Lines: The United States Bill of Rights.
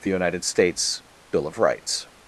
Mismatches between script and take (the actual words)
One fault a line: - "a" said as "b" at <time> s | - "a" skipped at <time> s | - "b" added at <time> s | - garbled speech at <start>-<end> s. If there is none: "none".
none